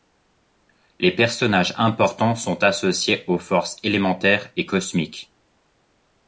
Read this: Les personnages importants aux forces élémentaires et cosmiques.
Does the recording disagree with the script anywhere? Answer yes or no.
yes